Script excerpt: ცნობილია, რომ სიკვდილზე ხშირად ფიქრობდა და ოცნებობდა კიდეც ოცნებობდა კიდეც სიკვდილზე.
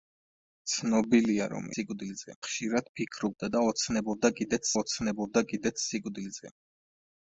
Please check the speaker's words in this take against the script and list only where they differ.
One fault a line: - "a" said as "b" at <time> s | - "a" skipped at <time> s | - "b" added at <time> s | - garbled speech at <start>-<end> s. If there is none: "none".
none